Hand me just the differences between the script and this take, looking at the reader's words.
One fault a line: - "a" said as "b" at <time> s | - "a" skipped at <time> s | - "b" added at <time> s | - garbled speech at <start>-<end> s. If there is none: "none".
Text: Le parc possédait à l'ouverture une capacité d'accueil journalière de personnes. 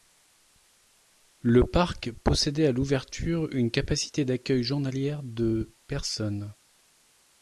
none